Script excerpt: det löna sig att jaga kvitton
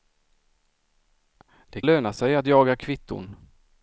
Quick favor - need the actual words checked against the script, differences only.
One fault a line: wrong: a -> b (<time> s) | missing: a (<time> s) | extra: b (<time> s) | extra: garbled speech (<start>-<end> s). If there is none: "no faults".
no faults